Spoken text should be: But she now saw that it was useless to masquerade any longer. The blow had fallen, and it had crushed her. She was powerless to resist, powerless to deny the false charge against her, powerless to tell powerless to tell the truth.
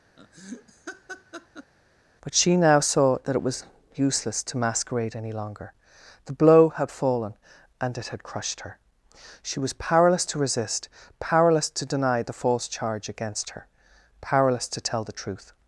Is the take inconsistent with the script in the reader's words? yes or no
yes